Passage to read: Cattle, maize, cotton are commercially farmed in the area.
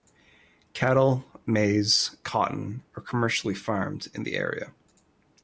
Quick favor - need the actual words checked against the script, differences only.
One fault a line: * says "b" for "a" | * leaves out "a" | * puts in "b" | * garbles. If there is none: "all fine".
all fine